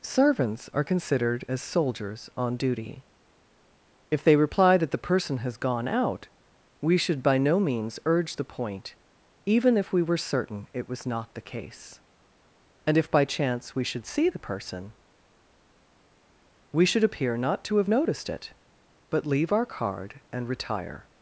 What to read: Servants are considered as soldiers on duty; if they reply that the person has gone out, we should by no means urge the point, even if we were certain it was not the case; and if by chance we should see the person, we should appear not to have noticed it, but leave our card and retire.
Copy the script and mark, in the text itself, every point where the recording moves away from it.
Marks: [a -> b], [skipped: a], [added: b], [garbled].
Servants are considered as soldiers on duty; if they reply that the person has gone out, we should by no means urge the point, even if we were certain it was not the case; and if by chance we should see the person, we should appear not to have noticed it, but leave our card and retire.